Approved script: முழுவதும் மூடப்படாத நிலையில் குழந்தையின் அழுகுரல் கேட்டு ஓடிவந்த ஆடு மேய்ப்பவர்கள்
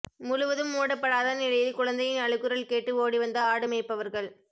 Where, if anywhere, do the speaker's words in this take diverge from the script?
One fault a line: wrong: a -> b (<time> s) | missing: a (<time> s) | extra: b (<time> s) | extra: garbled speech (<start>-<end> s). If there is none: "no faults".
no faults